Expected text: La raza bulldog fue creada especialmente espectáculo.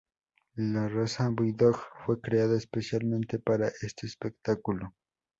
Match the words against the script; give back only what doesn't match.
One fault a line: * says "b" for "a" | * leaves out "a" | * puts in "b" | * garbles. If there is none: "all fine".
* puts in "para este"